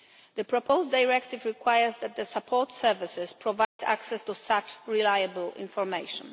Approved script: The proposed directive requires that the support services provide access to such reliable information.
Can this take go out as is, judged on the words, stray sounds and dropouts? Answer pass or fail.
fail